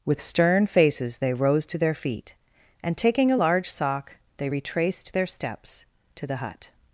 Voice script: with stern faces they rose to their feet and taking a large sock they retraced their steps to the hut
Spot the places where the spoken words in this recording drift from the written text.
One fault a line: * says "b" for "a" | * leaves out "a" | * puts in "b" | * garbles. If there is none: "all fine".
all fine